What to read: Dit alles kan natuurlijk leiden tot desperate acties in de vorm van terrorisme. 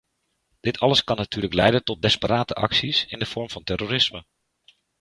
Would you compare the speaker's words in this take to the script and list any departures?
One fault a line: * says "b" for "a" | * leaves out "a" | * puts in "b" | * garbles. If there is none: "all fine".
all fine